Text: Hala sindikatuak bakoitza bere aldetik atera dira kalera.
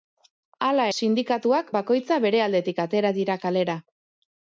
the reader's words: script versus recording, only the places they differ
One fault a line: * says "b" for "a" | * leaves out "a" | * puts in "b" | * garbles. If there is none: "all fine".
all fine